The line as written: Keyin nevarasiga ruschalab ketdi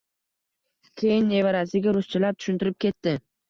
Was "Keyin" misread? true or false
false